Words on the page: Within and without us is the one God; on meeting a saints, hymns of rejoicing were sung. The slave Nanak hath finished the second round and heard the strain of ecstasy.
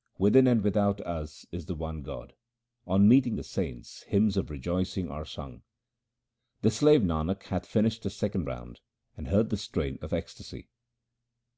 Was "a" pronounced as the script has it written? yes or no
no